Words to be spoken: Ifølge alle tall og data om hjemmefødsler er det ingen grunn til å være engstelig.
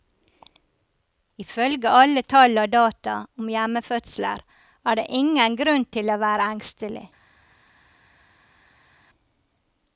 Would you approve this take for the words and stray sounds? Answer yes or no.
yes